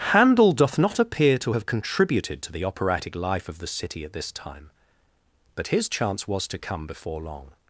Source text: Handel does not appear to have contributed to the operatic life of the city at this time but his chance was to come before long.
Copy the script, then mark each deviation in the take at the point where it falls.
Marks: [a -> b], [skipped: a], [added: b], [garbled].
Handel [does -> doth] not appear to have contributed to the operatic life of the city at this time but his chance was to come before long.